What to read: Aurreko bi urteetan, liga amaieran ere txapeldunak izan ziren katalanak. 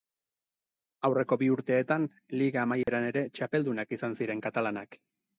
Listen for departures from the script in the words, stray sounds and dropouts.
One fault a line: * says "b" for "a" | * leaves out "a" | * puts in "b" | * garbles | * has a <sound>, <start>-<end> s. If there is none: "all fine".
* has a dropout, 2.8-2.9 s